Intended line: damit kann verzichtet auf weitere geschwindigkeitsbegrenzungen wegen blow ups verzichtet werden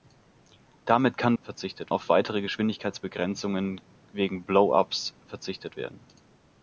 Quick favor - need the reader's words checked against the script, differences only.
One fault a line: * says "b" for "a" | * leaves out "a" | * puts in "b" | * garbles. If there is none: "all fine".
all fine